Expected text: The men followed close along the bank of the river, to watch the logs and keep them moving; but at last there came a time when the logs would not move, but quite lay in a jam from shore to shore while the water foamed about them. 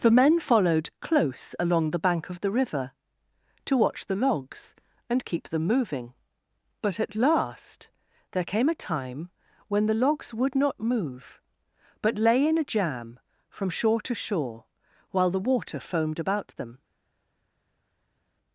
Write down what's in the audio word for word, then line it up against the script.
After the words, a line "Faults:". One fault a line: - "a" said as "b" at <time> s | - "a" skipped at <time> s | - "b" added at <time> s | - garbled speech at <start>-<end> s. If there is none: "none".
The men followed close along the bank of the river, to watch the logs and keep them moving; but at last there came a time when the logs would not move, but lay in a jam from shore to shore while the water foamed about them.
Faults:
- "quite" skipped at 12.2 s